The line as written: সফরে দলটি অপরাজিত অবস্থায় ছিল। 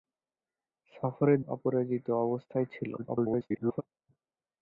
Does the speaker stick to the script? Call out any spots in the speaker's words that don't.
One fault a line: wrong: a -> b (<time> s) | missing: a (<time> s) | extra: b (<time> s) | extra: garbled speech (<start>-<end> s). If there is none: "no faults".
missing: দলটি (1.4 s)
extra: garbled speech (3.0-3.8 s)